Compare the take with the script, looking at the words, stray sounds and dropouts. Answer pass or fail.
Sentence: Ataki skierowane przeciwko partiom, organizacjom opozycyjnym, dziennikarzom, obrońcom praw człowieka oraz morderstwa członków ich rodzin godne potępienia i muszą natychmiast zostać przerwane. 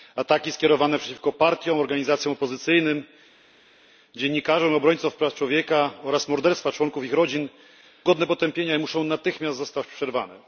pass